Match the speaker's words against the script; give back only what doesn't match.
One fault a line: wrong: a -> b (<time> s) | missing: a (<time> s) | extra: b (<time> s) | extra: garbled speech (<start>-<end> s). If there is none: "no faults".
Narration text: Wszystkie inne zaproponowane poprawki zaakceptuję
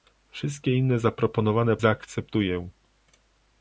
missing: poprawki (1.8 s)